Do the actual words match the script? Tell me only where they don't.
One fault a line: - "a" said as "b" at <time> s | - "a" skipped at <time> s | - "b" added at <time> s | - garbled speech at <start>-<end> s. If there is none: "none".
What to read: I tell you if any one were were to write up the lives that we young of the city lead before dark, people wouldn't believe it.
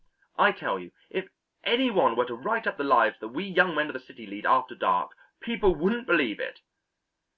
- "were" skipped at 2.2 s
- "men" added at 3.7 s
- "before" said as "after" at 4.5 s